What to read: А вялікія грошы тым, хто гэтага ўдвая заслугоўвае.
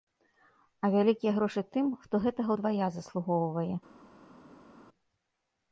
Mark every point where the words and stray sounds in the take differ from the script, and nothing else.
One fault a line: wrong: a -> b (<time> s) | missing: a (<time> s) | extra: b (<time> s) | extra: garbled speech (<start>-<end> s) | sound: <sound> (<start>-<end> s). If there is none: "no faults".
no faults